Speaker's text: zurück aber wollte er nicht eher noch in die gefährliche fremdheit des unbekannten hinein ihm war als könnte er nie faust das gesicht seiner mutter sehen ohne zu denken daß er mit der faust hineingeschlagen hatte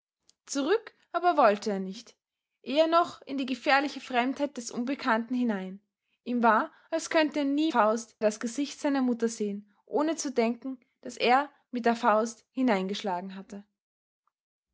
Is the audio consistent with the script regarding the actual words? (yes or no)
yes